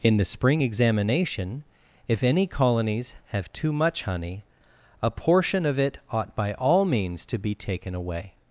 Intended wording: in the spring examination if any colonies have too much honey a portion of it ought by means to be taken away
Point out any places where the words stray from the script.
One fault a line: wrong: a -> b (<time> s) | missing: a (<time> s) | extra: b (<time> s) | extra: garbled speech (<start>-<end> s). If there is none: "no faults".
extra: all (6.5 s)